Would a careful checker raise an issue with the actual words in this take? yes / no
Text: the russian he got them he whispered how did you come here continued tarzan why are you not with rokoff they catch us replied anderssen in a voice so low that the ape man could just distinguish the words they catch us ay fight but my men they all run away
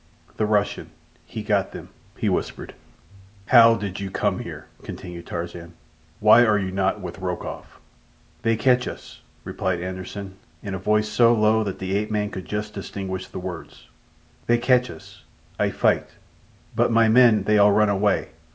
no